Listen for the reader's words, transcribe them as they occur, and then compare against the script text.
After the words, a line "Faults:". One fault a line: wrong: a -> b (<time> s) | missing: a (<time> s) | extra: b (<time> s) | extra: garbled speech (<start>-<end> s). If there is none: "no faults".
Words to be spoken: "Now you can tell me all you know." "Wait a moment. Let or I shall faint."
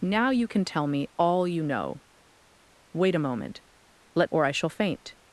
"Now you can tell me all you know." "Wait a moment. Let or I shall faint."
Faults:
no faults